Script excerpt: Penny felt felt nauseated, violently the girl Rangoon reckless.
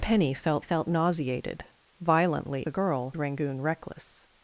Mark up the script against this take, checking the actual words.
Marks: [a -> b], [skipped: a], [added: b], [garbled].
Penny felt felt nauseated, violently the girl Rangoon reckless.